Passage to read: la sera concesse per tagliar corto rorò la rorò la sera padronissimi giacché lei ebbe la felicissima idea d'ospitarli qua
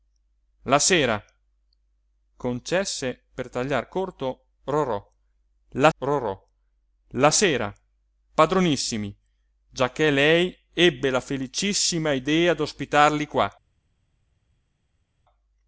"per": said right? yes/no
yes